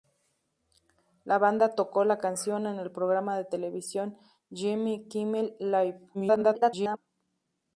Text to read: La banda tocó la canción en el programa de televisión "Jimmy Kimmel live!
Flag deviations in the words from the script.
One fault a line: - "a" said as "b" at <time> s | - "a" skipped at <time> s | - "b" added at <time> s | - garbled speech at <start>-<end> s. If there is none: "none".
- garbled speech at 6.1-7.0 s